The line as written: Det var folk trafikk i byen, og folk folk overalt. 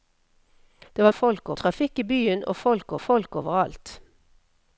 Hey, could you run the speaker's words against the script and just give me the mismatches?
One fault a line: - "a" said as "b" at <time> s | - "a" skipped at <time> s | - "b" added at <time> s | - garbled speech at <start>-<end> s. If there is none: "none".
none